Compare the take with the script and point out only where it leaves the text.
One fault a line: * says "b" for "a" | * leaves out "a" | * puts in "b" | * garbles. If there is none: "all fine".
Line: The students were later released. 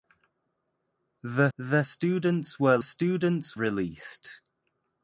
* puts in "the"
* says "students" for "later"